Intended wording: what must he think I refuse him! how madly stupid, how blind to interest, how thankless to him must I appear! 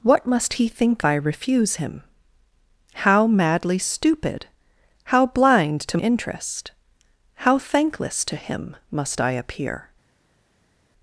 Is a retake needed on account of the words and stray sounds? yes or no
no